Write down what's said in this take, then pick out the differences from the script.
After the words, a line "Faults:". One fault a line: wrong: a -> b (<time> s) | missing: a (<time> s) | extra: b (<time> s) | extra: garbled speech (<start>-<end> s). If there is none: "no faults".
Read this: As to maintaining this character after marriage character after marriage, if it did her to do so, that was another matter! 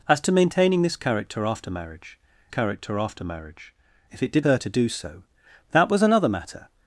As to maintaining this character after marriage character after marriage, if it did her to do so, that was another matter!
Faults:
no faults